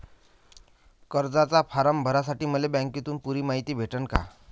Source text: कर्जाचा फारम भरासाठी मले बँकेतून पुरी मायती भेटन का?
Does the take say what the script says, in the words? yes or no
yes